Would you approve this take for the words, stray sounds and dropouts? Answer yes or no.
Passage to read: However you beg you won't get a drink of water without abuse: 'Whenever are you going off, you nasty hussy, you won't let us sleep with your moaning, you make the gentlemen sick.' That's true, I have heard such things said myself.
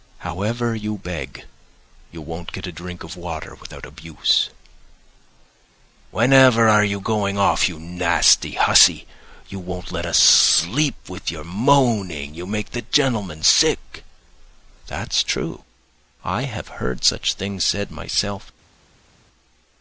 yes